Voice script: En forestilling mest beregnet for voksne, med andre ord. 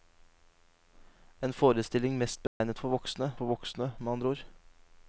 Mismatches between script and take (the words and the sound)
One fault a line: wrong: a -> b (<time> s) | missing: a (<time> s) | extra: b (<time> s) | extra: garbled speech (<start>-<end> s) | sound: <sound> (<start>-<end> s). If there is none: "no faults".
sound: dropout (2.5-2.6 s)
extra: for voksne (3.4 s)